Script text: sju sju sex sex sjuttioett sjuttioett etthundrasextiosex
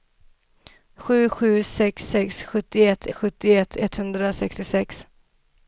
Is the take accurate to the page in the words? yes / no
yes